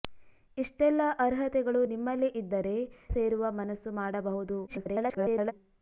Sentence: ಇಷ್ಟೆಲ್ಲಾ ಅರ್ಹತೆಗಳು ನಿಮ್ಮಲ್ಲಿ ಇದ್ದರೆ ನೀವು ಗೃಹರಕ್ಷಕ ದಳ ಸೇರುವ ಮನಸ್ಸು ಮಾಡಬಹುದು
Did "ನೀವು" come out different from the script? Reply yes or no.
yes